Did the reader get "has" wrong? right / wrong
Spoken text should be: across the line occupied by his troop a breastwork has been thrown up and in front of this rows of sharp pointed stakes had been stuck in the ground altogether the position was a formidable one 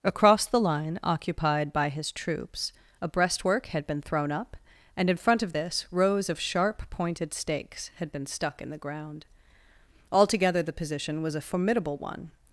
wrong